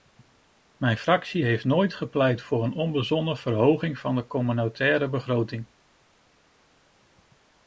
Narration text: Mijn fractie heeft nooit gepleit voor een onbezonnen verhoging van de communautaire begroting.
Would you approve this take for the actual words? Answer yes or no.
yes